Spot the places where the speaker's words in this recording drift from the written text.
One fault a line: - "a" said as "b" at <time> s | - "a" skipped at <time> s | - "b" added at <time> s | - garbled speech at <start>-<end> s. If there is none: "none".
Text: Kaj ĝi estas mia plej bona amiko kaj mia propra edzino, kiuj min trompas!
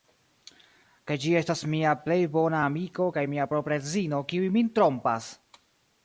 none